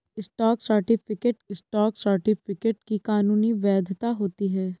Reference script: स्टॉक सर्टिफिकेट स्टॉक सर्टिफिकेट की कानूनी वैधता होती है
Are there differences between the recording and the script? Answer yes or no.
no